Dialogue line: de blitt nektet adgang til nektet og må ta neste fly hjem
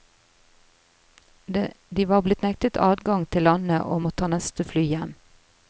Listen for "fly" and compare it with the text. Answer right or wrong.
right